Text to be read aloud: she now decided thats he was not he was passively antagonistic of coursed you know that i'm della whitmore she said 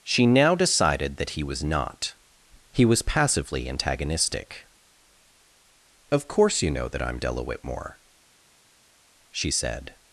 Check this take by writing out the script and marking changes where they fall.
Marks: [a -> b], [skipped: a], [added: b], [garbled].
she now decided [thats -> that] he was not he was passively antagonistic of [coursed -> course] you know that i'm della whitmore she said